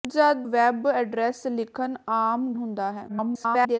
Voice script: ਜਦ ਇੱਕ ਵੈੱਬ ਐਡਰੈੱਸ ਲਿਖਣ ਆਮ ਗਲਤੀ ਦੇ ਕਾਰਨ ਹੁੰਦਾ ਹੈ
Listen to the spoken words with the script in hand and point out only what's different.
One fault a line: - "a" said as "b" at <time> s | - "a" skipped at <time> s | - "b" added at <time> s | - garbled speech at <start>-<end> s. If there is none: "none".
- "ਇੱਕ" skipped at 0.5 s
- "ਗਲਤੀ ਦੇ ਕਾਰਨ" skipped at 2.5 s
- garbled speech at 3.1-3.8 s